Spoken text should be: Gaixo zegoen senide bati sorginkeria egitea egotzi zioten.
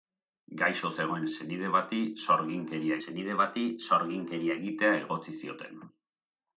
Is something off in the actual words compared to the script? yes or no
yes